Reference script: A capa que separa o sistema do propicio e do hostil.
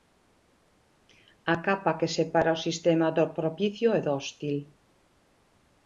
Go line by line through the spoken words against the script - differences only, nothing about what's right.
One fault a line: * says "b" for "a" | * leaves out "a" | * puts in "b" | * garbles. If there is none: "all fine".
all fine